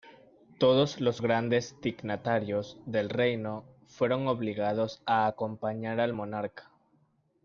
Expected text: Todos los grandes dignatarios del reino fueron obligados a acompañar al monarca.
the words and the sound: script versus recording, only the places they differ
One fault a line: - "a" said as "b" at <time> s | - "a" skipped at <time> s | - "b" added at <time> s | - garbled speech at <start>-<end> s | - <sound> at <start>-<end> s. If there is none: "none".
none